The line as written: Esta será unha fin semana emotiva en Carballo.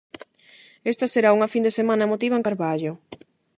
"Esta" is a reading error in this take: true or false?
false